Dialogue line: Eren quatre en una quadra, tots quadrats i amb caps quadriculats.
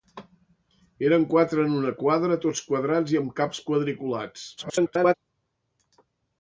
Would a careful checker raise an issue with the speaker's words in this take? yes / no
yes